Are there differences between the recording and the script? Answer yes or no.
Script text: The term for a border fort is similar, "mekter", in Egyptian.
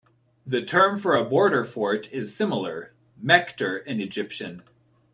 no